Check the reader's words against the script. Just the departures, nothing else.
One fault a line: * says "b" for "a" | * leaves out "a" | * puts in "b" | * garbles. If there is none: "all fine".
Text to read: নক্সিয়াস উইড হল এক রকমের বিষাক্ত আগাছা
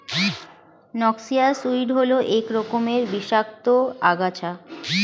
all fine